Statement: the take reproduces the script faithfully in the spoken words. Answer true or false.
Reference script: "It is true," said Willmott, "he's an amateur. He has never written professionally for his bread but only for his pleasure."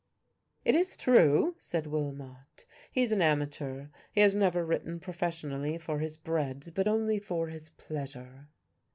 true